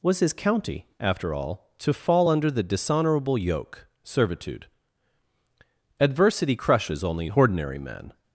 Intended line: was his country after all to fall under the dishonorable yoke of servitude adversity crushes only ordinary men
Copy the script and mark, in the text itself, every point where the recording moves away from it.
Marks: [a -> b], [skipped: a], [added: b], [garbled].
was his [country -> county] after all to fall under the dishonorable yoke [skipped: of] servitude adversity crushes only ordinary men